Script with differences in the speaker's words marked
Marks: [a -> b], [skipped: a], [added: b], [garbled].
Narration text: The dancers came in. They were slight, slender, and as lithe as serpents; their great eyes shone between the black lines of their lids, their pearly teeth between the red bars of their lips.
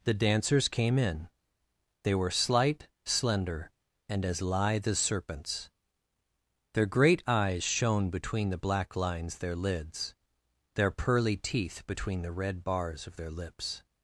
The dancers came in. They were slight, slender, and as lithe as serpents; their great eyes shone between the black lines [skipped: of] their lids, their pearly teeth between the red bars of their lips.